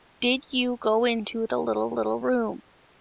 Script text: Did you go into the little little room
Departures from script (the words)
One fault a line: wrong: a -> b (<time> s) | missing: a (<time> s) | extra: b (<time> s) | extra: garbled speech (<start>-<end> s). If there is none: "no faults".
no faults